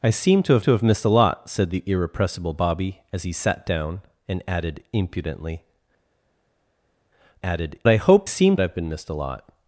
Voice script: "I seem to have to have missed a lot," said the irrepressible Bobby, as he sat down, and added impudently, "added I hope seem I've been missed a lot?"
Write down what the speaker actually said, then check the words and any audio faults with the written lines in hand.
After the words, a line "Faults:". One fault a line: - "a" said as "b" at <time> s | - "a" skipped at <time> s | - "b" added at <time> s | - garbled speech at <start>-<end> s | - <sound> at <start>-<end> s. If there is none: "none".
"I seem to have to have missed a lot," said the irrepressible Bobby, as he sat down, and added impudently, "added I hope seem I've been missed a lot?"
Faults:
none